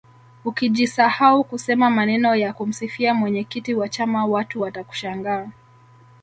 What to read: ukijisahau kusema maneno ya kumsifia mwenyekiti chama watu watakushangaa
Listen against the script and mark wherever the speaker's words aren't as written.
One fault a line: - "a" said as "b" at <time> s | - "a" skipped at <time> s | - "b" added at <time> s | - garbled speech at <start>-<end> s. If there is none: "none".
- "wa" added at 3.7 s